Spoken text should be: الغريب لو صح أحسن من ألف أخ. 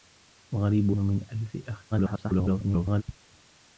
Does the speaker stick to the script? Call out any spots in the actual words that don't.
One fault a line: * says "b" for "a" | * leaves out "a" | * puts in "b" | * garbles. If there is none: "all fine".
* leaves out "لو صح أحسن"
* garbles